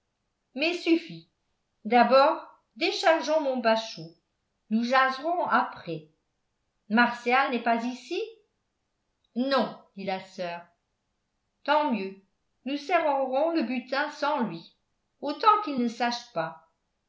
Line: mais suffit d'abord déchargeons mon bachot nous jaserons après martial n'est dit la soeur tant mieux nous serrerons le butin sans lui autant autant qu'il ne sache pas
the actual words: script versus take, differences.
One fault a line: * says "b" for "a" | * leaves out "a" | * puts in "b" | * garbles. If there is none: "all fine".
* puts in "pas ici non"
* leaves out "autant"